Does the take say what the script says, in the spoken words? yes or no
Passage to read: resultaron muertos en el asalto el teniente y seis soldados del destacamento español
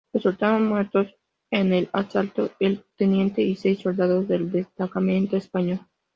yes